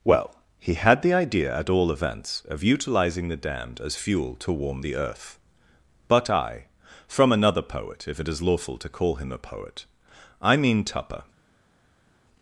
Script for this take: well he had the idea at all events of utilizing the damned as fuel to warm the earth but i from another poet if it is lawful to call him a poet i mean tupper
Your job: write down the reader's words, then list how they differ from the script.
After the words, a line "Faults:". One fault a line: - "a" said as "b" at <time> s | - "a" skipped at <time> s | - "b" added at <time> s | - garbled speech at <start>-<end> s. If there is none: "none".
well he had the idea at all events of utilizing the damned as fuel to warm the earth but i from another poet if it is lawful to call him a poet i mean tupper
Faults:
none